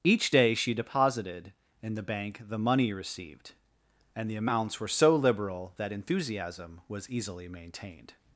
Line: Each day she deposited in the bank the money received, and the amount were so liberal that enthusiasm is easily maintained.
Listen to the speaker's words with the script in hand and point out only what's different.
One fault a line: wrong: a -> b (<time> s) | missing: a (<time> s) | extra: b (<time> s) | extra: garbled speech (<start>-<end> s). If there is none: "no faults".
wrong: amount -> amounts (4.4 s)
wrong: is -> was (6.9 s)